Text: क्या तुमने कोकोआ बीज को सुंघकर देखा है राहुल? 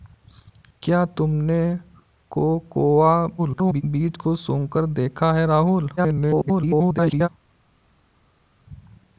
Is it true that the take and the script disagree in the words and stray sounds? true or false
true